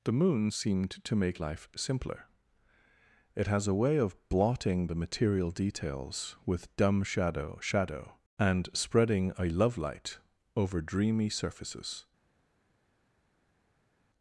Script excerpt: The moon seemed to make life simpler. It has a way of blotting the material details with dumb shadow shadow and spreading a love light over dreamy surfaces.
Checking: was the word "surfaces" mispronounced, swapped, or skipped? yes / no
no